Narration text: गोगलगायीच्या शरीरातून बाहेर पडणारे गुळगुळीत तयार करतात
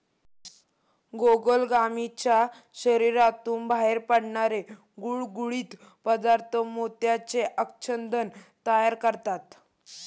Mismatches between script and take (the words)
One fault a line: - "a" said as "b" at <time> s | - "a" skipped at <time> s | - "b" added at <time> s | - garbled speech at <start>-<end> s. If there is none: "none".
- "पदार्थ मोत्याचे आच्छादन" added at 6.1 s